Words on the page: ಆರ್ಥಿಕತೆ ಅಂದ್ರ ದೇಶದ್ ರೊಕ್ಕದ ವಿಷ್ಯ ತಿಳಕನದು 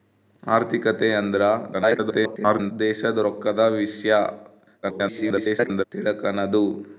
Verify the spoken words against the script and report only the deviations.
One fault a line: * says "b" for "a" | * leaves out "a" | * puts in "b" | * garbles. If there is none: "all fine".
* garbles
* garbles